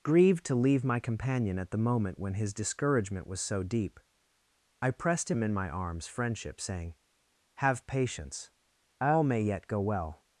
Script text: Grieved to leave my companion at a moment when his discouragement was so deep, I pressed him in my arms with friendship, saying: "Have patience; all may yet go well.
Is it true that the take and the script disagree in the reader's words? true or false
true